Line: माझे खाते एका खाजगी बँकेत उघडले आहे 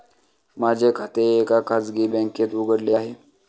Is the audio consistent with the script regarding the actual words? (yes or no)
yes